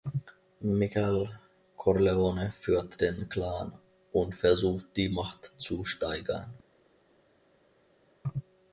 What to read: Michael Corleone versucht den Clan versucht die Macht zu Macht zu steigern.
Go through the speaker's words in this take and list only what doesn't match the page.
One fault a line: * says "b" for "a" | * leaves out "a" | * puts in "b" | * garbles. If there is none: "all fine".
* says "führt" for "versucht"
* puts in "und"
* leaves out "Macht zu"